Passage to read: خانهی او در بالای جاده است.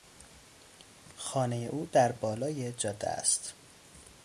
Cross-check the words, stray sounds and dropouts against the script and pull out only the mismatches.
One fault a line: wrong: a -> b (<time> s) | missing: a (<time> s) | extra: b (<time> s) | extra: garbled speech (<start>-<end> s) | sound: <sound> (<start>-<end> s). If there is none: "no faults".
no faults